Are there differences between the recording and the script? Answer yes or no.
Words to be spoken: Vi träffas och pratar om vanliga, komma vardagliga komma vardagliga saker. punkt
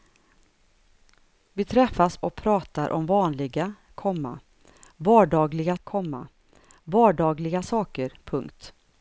no